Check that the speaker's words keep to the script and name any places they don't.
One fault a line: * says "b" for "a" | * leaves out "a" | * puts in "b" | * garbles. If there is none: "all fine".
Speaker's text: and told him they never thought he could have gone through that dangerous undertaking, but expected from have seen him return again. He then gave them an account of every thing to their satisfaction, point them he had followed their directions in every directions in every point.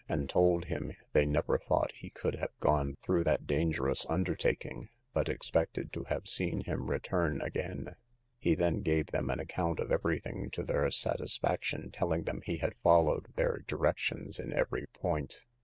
* says "to" for "from"
* says "telling" for "point"
* leaves out "directions in every"